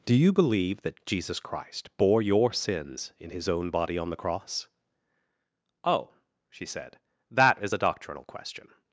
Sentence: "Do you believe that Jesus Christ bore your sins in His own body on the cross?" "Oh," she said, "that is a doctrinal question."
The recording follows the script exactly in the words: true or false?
true